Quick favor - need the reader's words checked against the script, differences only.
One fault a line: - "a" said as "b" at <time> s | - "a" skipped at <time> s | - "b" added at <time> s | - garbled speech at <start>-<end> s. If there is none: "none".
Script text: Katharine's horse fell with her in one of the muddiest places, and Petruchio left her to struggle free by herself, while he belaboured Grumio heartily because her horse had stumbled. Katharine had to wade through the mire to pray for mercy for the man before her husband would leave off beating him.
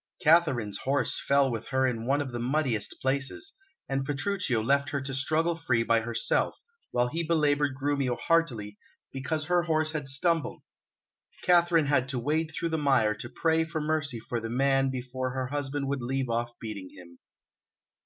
none